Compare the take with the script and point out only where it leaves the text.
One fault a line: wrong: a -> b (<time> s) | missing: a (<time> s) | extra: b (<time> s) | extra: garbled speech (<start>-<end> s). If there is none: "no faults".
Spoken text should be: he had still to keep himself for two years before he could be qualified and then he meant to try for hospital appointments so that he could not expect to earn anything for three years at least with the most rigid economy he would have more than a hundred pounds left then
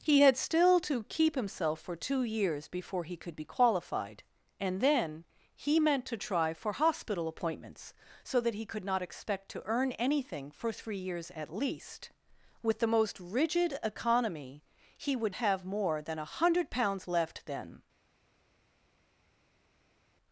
no faults